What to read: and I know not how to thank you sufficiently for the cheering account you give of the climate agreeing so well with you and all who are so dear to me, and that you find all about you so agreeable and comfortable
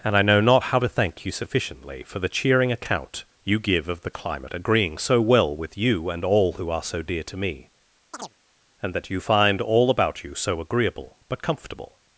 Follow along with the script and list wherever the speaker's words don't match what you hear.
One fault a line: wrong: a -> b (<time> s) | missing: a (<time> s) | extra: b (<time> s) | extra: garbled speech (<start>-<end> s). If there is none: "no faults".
wrong: and -> but (11.3 s)